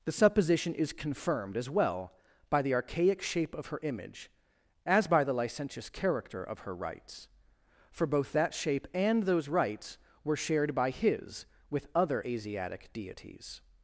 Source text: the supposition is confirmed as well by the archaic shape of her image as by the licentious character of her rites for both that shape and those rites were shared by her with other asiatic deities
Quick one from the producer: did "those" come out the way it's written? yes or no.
yes